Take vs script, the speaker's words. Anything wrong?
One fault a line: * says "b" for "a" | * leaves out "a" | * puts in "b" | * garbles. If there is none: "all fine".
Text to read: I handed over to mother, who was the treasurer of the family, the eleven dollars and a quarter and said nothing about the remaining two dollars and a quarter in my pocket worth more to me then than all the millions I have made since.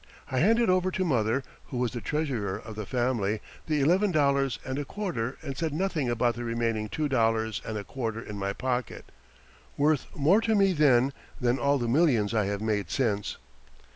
all fine